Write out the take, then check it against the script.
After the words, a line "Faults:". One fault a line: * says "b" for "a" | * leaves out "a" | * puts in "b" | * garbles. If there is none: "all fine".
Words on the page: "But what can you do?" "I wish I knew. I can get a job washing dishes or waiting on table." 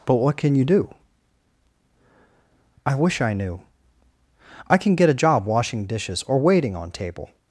"But what can you do?" "I wish I knew. I can get a job washing dishes or waiting on table."
Faults:
all fine